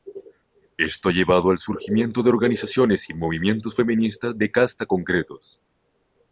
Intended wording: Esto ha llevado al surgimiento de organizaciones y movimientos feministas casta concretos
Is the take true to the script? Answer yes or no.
no